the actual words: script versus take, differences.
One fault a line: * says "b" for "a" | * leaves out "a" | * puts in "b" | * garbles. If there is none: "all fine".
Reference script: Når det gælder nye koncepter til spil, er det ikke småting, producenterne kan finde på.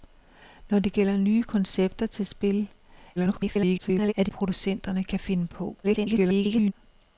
* garbles
* leaves out "ikke småting"
* garbles